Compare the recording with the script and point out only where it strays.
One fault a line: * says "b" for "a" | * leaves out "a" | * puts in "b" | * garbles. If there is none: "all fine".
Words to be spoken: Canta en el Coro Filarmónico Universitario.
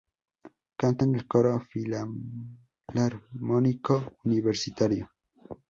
all fine